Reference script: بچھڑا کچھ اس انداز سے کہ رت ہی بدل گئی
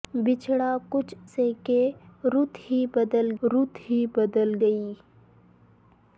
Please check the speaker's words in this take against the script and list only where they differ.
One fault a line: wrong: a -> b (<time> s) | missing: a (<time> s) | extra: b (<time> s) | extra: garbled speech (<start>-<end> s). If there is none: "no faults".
wrong: اس انداز سے کہ -> سے کہ رت ہی بدل (1.2 s)